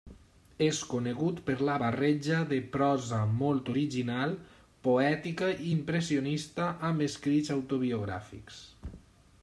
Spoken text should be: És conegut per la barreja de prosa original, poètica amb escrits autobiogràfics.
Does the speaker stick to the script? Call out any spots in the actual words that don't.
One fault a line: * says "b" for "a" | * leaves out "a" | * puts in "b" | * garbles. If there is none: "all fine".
* puts in "molt"
* puts in "i impressionista"